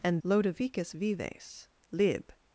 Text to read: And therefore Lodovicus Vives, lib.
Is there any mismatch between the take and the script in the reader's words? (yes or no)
yes